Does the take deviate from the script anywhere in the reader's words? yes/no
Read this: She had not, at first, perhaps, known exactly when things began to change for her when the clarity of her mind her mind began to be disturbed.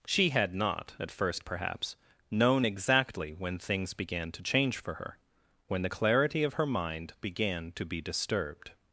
yes